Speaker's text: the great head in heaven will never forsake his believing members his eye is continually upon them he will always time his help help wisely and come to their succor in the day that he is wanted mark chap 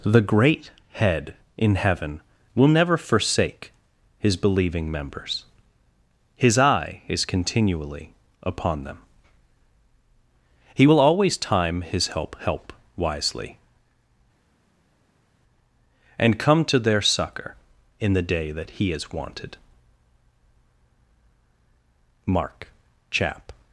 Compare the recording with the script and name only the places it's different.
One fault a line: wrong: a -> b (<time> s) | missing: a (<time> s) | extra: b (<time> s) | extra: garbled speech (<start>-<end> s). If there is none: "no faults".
no faults